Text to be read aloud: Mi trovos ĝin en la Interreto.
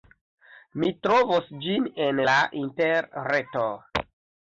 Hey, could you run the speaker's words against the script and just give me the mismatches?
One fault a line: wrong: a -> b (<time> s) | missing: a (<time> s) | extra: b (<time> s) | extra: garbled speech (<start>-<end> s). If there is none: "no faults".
no faults